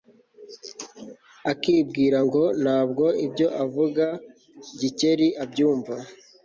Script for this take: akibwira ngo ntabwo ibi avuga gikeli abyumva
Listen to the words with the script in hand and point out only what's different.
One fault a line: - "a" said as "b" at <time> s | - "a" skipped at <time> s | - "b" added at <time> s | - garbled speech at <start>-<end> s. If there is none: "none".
- "ibi" said as "ibyo" at 3.3 s